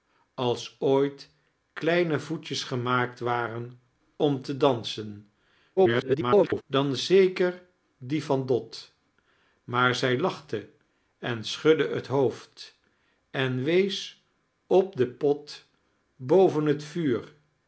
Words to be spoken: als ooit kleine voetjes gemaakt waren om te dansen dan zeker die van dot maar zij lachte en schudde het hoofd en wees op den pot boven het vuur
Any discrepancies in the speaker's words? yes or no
yes